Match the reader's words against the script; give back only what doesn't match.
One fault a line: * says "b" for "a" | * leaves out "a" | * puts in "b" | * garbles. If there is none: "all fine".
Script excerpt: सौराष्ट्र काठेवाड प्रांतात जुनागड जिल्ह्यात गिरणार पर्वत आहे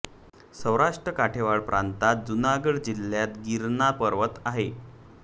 all fine